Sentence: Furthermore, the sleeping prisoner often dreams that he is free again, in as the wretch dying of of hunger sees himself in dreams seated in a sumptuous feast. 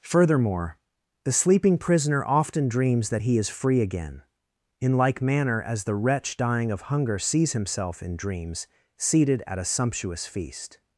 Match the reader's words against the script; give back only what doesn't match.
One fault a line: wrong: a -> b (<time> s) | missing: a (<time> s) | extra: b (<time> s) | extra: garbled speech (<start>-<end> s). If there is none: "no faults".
extra: like manner (5.0 s)
missing: of (6.8 s)
wrong: in -> at (9.4 s)